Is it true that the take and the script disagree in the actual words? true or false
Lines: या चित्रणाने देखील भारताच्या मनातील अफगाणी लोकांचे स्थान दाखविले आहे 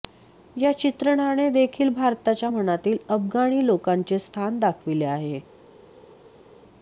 false